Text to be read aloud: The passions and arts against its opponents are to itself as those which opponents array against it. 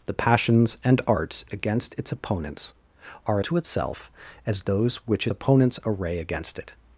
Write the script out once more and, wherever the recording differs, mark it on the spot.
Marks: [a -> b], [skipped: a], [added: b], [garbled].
The passions and arts against its opponents are to itself as those which opponents array against it.